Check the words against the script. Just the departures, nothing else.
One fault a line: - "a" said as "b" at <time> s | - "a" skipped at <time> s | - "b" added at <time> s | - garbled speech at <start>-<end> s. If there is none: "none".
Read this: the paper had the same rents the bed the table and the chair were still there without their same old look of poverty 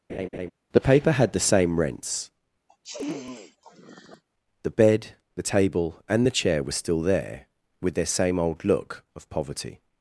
- "without" said as "with" at 7.8 s